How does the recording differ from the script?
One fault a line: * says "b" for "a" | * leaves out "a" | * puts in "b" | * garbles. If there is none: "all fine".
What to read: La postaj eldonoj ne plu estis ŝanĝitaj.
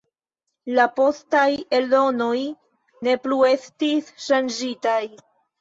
all fine